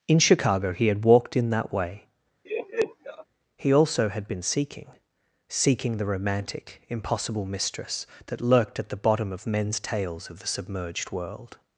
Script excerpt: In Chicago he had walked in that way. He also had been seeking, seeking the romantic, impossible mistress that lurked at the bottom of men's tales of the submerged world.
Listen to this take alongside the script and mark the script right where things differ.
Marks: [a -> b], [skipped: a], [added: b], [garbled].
In Chicago he had walked in that way. He also had been seeking, seeking the romantic, impossible mistress that lurked at the bottom of men's tales of the submerged world.